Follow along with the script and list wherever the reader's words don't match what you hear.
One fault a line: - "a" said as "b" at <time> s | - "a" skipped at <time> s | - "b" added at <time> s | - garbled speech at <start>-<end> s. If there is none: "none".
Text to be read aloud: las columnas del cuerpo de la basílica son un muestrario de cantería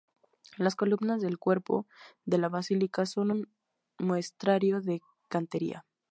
none